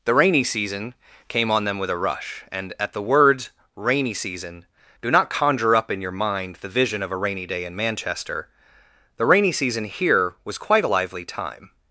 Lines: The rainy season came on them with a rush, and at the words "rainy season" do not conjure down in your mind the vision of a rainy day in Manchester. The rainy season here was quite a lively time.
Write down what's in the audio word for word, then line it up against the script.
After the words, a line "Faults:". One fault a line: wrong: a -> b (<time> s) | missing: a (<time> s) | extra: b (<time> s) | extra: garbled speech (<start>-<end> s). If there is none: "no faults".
The rainy season came on them with a rush, and at the words "rainy season" do not conjure up in your mind the vision of a rainy day in Manchester. The rainy season here was quite a lively time.
Faults:
wrong: down -> up (5.7 s)